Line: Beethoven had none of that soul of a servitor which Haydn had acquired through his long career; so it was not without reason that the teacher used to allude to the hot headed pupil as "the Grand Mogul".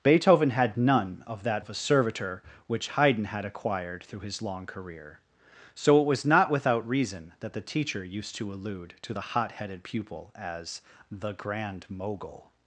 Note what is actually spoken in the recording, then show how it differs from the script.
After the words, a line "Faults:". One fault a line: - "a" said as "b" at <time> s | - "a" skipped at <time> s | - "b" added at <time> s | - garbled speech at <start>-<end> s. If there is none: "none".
Beethoven had none of that of a servitor which Haydn had acquired through his long career; so it was not without reason that the teacher used to allude to the hot headed pupil as "the Grand Mogul".
Faults:
- "soul" skipped at 1.6 s